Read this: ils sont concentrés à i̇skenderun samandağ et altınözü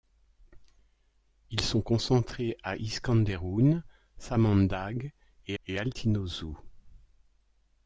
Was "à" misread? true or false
false